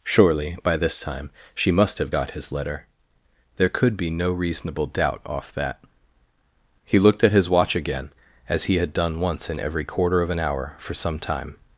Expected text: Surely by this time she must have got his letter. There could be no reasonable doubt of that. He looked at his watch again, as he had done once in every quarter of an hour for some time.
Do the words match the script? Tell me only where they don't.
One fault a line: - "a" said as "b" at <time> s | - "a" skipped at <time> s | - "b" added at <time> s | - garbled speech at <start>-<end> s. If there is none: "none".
- "of" said as "off" at 5.3 s